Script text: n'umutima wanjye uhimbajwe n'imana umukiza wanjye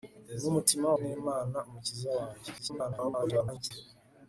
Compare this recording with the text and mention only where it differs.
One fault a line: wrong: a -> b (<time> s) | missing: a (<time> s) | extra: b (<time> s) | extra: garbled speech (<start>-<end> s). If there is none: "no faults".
missing: wanjye uhimbajwe (0.9 s)
extra: garbled speech (2.6-3.7 s)